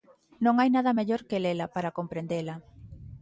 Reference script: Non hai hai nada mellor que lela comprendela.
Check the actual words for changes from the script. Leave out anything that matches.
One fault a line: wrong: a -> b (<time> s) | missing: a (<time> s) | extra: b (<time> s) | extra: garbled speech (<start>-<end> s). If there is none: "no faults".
missing: hai (0.7 s)
extra: para (1.7 s)